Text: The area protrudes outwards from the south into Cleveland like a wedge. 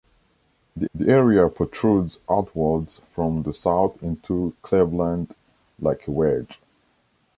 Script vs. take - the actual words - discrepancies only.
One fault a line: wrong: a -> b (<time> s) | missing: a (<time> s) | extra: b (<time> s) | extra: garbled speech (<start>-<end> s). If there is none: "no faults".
extra: the (0.9 s)